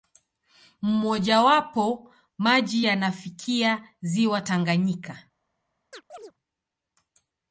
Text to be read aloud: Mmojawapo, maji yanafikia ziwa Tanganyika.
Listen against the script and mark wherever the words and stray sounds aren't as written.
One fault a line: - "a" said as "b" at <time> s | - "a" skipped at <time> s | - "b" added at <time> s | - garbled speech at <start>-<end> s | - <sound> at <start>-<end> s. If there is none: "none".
- chirp at 5.9-6.3 s